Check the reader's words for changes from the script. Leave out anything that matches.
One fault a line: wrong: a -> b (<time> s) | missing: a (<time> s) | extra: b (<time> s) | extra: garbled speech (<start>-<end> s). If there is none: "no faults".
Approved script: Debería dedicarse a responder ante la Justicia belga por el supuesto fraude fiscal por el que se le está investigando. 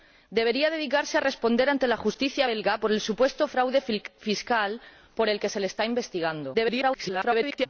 extra: garbled speech (6.5-7.7 s)